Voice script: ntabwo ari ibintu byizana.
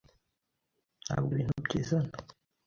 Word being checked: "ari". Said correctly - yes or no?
no